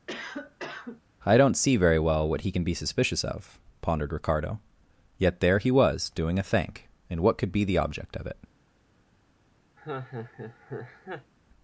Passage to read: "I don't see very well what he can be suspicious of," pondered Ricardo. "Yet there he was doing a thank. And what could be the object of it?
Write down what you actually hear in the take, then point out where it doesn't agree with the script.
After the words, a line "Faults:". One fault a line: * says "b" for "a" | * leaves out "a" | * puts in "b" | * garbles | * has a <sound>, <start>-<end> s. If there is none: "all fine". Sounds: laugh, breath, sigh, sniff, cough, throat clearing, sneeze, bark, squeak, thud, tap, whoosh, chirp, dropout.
"I don't see very well what he can be suspicious of," pondered Ricardo. "Yet there he was doing a thank. And what could be the object of it?
Faults:
* has a cough, 0.1-1.0 s
* has a laugh, 9.8-11.3 s